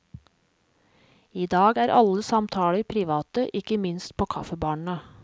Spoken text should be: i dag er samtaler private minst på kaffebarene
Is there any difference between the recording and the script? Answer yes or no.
yes